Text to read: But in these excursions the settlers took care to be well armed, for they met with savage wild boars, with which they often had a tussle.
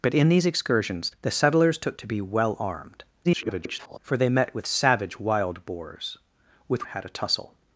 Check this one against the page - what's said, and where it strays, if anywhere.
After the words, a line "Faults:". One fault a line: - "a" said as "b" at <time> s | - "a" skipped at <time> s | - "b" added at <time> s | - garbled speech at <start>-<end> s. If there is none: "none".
But in these excursions the settlers took to be well armed, [garbled] for they met with savage wild boars, with had a tussle.
Faults:
- "care" skipped at 2.0 s
- garbled speech at 3.2-4.0 s
- "which they often" skipped at 6.8 s